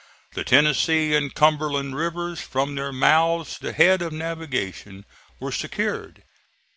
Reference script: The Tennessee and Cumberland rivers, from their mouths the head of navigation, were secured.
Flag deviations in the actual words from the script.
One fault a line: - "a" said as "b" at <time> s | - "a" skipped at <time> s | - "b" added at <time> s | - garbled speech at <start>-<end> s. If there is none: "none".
none